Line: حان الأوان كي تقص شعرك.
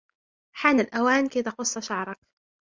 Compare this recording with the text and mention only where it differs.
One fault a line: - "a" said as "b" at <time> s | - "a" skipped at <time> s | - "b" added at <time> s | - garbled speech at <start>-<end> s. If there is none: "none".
none